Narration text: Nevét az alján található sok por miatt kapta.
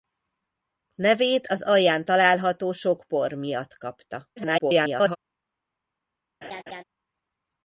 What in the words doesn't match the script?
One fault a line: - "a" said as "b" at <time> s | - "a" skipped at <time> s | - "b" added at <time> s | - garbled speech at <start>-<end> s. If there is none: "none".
- garbled speech at 4.4-5.2 s